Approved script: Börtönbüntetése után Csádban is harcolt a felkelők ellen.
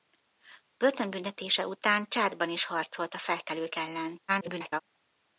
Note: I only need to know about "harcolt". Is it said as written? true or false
true